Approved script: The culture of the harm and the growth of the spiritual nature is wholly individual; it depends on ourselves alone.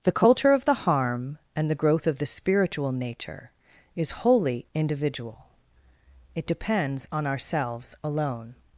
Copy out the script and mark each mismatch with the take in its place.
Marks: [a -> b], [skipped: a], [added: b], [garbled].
The culture of the harm and the growth of the spiritual nature is wholly individual; it depends on ourselves alone.